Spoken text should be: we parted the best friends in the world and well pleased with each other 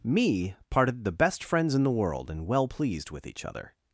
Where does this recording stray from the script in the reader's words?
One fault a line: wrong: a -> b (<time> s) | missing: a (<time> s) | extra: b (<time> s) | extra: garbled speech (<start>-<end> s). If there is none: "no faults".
wrong: we -> me (0.0 s)